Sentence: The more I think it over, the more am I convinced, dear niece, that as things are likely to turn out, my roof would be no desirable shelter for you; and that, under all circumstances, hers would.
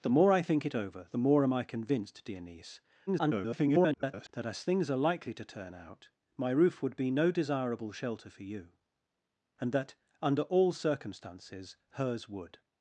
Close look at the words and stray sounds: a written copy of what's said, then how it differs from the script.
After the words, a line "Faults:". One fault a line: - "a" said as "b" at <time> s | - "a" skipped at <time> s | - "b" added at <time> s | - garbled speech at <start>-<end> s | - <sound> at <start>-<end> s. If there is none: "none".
The more I think it over, the more am I convinced, dear niece, [garbled] that as things are likely to turn out, my roof would be no desirable shelter for you; and that, under all circumstances, hers would.
Faults:
- garbled speech at 3.1-4.3 s